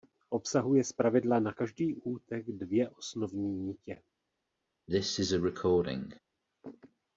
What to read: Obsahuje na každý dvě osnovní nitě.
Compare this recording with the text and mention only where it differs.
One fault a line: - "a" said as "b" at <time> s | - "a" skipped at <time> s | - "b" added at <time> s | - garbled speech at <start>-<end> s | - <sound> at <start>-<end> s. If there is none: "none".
- "zpravidla" added at 0.8 s
- "útek" added at 2.0 s
- cough at 4.9-6.2 s